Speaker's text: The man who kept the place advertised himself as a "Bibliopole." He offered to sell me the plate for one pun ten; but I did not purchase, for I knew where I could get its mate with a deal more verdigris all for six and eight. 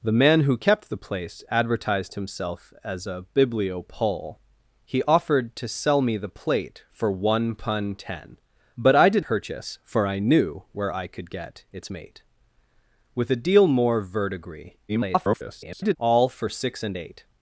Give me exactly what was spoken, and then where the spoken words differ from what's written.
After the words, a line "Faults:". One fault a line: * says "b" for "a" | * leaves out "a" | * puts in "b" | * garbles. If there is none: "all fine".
The man who kept the place advertised himself as a "Bibliopole." He offered to sell me the plate for one pun ten; but I did purchase, for I knew where I could get its mate with a deal more verdigris [garbled] all for six and eight.
Faults:
* leaves out "not"
* garbles